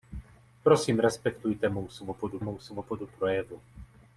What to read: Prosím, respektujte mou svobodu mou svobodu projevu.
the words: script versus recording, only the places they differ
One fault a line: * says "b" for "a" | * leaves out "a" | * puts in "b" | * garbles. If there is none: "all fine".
all fine